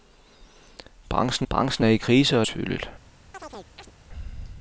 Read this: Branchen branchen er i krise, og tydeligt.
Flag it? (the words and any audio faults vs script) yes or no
yes